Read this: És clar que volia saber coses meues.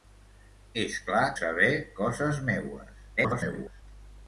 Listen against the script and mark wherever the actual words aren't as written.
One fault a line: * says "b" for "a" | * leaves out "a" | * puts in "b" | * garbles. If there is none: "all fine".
* leaves out "que volia"
* garbles